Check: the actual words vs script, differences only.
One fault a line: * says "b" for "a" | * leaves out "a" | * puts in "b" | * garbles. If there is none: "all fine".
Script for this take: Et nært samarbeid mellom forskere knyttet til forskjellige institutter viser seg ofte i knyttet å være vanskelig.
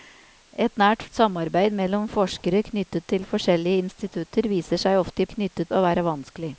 all fine